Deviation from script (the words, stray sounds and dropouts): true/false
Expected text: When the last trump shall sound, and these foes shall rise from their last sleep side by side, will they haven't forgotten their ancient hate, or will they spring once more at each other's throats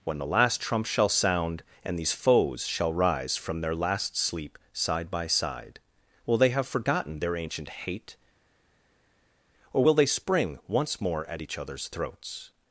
true